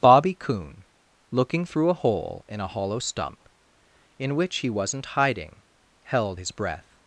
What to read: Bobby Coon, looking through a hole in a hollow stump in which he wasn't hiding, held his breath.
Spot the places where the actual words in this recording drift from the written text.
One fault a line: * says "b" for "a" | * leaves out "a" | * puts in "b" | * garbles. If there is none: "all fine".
all fine